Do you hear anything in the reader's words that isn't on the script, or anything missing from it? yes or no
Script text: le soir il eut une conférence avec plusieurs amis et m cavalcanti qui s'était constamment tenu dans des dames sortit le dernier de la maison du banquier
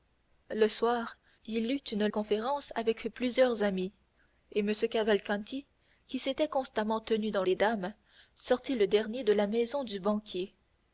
no